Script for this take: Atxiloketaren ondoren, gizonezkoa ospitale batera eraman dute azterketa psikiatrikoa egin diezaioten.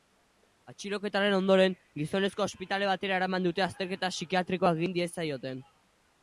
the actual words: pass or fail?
pass